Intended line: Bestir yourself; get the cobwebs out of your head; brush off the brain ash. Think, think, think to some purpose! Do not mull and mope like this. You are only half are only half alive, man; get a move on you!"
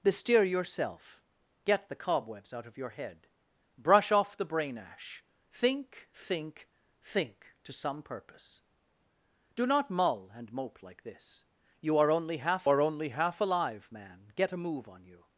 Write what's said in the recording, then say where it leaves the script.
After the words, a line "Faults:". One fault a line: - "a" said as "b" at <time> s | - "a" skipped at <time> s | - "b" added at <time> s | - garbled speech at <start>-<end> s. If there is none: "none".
Bestir yourself; get the cobwebs out of your head; brush off the brain ash. Think, think, think to some purpose! Do not mull and mope like this. You are only half are only half alive, man; get a move on you!"
Faults:
none